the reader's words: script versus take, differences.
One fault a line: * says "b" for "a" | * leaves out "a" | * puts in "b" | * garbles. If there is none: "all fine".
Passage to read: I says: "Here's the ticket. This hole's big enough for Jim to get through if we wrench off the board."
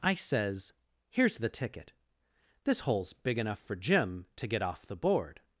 * leaves out "through if we wrench"